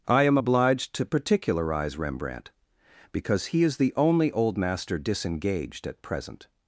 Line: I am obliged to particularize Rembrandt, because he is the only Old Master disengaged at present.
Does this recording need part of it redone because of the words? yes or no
no